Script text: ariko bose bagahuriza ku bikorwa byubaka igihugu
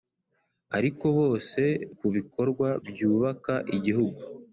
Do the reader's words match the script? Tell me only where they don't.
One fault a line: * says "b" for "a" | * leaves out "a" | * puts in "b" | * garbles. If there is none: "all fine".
* leaves out "bagahuriza"